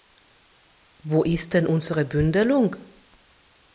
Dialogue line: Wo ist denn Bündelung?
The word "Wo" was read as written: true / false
true